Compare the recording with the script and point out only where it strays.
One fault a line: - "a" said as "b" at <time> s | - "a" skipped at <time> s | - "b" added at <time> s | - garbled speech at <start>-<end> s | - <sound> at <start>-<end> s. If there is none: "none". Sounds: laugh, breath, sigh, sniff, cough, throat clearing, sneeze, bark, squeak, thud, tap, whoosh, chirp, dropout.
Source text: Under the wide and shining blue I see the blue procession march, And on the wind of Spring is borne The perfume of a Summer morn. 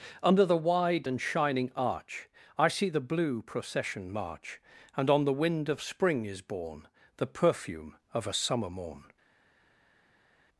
- "blue" said as "arch" at 1.7 s